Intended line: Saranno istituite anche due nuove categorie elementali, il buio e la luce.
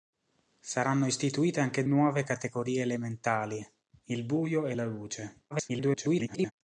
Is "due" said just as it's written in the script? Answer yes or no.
no